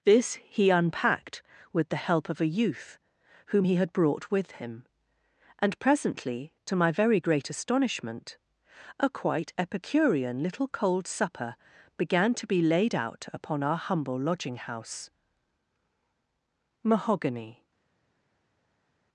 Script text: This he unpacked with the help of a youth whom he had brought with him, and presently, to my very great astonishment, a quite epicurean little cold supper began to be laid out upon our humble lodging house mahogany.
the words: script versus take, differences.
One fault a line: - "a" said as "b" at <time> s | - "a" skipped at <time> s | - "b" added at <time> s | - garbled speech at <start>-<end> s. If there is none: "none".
none